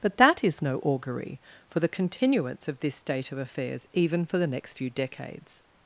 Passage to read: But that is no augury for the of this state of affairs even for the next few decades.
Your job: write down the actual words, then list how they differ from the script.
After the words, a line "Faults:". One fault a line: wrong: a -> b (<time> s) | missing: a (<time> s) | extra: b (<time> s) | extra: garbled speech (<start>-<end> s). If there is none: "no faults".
But that is no augury for the continuance of this state of affairs even for the next few decades.
Faults:
extra: continuance (1.9 s)